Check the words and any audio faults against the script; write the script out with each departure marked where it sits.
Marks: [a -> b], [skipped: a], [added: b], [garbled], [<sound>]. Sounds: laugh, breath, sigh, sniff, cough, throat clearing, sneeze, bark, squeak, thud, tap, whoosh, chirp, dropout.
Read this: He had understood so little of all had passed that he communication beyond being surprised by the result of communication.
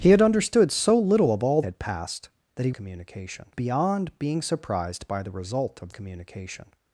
He had understood so little of all had passed that he communication beyond being surprised by the result of communication.